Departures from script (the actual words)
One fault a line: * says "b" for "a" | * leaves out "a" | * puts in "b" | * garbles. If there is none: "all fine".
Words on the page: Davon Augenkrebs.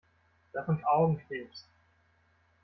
all fine